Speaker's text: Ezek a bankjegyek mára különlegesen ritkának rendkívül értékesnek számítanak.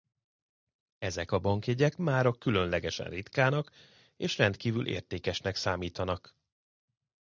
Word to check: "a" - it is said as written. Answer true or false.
true